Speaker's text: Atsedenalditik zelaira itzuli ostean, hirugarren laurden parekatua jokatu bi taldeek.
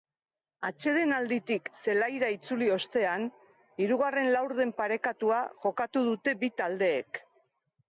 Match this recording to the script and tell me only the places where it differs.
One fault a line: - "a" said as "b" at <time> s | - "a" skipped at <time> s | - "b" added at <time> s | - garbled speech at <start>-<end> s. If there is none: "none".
- "dute" added at 6.1 s